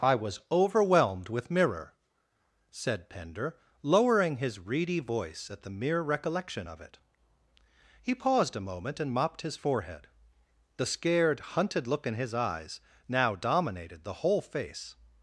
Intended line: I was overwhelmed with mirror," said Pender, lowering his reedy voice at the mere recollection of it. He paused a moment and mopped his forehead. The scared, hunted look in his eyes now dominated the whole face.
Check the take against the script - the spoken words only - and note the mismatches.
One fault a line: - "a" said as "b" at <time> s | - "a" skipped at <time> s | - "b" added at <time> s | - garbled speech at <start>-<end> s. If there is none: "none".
none